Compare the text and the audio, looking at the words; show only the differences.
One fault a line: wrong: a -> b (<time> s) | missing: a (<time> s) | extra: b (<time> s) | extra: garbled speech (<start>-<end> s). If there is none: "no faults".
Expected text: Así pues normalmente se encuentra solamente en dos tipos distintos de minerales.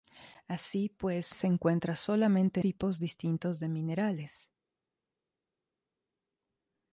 missing: normalmente (1.4 s)
missing: en dos (2.6 s)